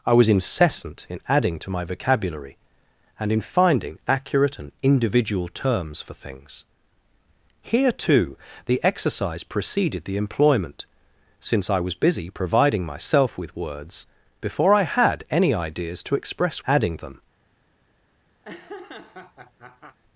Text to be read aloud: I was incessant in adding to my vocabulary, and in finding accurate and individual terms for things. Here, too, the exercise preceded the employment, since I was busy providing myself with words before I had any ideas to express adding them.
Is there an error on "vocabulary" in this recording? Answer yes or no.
no